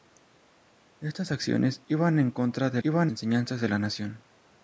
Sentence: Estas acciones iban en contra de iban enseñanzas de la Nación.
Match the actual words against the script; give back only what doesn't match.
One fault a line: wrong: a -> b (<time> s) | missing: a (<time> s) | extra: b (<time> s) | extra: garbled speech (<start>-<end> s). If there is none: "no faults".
no faults